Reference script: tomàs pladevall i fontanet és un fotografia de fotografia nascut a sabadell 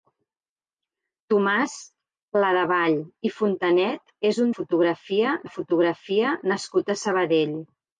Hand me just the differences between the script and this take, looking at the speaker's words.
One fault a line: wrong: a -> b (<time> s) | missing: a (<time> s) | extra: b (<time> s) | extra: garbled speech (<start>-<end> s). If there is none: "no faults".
no faults